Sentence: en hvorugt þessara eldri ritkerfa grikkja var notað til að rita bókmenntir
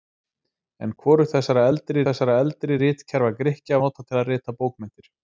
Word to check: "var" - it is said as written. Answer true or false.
false